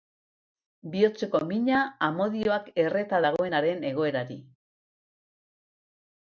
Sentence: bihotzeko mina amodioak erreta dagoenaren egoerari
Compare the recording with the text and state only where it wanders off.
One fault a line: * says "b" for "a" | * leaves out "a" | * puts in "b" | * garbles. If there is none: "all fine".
all fine